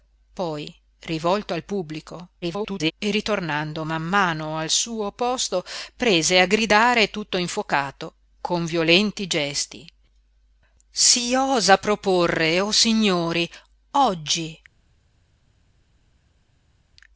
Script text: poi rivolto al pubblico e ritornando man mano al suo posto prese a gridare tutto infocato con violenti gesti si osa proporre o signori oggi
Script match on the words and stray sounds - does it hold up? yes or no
no